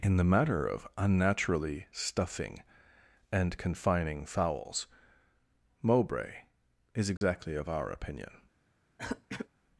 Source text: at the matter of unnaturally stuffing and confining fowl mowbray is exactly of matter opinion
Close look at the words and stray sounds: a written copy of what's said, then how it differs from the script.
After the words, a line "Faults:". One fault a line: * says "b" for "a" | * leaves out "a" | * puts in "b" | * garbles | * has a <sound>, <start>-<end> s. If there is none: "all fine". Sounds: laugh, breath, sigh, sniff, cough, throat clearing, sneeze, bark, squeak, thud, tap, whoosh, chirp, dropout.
in the matter of unnaturally stuffing and confining fowls mowbray is exactly of our opinion
Faults:
* says "in" for "at"
* says "fowls" for "fowl"
* has a dropout, 7.2-7.2 s
* says "our" for "matter"
* has a throat clearing, 9.0-9.5 s